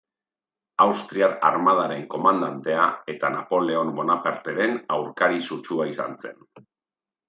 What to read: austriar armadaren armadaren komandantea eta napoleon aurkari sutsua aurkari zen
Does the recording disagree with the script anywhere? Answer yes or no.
yes